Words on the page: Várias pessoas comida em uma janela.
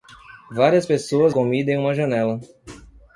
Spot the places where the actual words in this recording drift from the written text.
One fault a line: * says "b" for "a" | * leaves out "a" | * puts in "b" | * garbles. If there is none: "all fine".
all fine